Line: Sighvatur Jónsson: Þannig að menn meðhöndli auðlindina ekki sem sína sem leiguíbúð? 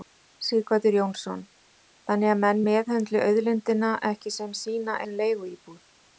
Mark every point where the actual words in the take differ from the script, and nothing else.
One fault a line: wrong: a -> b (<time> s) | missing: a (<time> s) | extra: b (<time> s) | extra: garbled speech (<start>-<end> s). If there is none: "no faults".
no faults